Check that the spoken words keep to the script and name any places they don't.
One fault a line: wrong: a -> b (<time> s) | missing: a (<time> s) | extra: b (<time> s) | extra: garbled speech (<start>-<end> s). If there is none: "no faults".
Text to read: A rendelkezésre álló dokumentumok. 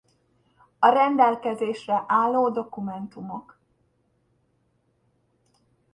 no faults